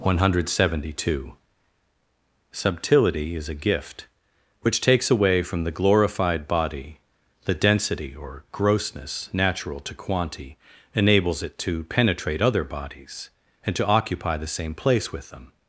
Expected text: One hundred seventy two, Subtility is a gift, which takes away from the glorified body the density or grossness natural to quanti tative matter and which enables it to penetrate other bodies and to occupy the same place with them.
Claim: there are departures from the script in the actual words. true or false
true